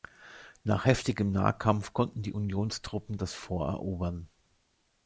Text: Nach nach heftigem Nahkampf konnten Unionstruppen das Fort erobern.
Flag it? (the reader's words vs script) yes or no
yes